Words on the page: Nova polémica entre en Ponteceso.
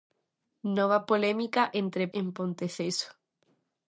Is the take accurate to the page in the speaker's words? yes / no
yes